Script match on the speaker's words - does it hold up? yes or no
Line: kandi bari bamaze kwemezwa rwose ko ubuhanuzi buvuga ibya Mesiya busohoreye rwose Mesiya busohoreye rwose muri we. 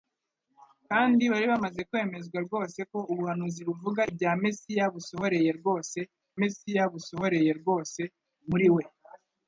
yes